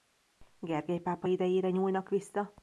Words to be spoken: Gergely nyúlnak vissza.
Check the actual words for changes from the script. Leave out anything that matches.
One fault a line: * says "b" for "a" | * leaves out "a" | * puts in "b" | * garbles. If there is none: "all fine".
* puts in "pápa idejére"